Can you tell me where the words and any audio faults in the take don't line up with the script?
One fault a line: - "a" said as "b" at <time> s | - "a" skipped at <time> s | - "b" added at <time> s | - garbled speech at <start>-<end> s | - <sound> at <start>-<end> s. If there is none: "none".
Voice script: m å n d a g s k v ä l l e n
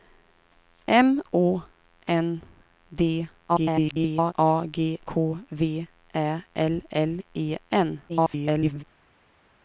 - garbled speech at 3.5-4.3 s
- "s" skipped at 5.0 s
- garbled speech at 8.1-8.8 s